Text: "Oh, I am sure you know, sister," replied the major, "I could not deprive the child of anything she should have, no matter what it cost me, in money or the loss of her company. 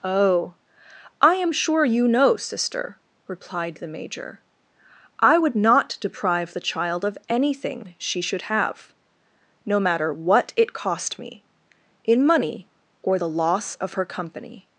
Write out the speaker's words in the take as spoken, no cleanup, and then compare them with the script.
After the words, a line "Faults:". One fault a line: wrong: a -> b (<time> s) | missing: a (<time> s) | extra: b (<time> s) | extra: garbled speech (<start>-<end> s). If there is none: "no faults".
"Oh, I am sure you know, sister," replied the major, "I would not deprive the child of anything she should have, no matter what it cost me, in money or the loss of her company.
Faults:
wrong: could -> would (5.4 s)